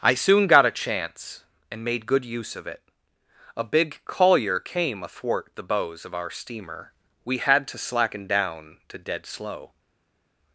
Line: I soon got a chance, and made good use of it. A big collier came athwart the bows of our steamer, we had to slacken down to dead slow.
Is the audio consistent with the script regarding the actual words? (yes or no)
yes